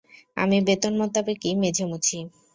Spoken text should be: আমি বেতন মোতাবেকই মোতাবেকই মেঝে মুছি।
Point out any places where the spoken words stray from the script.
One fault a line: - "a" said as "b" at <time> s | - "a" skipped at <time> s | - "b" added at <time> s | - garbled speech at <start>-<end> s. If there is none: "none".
- "মোতাবেকই" skipped at 1.5 s